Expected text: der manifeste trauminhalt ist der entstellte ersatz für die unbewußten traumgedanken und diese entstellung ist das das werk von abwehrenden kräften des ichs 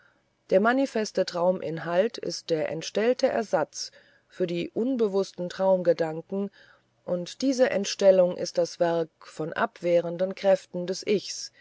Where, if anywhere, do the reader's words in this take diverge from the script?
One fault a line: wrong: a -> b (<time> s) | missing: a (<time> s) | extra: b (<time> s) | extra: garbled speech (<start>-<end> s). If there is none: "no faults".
missing: das (8.8 s)